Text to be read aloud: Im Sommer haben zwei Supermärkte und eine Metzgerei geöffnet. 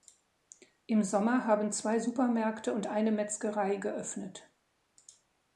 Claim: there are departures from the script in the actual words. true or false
false